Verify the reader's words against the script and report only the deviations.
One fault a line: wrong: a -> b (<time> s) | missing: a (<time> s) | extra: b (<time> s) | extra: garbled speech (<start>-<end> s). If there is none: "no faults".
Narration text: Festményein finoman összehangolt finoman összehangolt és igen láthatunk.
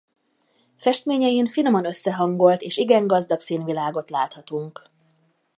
wrong: finoman összehangolt és igen -> és igen gazdag színvilágot (2.6 s)